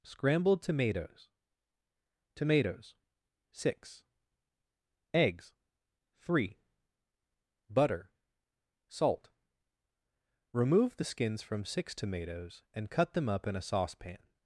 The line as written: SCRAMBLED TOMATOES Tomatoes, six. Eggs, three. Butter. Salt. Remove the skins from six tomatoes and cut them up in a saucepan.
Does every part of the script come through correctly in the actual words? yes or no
yes